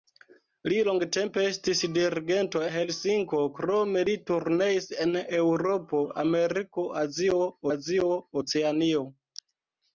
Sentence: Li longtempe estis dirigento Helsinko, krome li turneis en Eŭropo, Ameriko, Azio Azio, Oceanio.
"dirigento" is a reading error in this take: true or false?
false